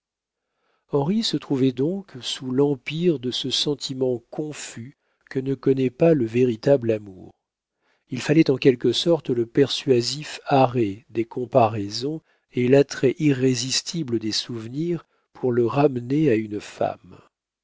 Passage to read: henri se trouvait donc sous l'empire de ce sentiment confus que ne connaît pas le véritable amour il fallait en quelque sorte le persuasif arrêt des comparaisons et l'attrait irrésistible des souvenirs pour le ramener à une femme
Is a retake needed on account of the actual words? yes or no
no